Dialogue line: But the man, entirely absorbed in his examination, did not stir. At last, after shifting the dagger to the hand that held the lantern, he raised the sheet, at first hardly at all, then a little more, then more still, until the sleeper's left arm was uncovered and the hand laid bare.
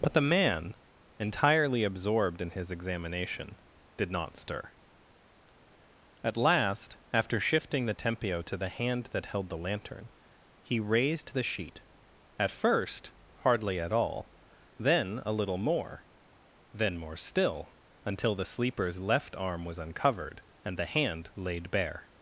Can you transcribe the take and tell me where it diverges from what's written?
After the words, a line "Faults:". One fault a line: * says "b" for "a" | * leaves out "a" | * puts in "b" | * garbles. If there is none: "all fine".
But the man, entirely absorbed in his examination, did not stir. At last, after shifting the tempio to the hand that held the lantern, he raised the sheet, at first hardly at all, then a little more, then more still, until the sleeper's left arm was uncovered and the hand laid bare.
Faults:
* says "tempio" for "dagger"